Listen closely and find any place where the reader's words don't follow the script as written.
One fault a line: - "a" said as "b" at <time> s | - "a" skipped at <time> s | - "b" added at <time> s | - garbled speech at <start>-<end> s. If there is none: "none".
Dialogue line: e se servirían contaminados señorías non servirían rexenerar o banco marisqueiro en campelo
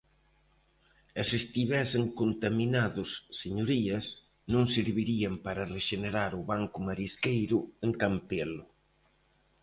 - "servirían" said as "estivesen" at 1.4 s
- "para" added at 5.5 s